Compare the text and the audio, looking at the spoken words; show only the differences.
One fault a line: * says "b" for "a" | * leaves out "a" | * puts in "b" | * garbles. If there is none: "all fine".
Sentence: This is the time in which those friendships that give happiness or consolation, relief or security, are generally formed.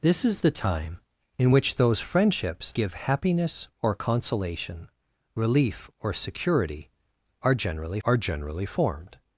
* leaves out "that"
* puts in "are generally"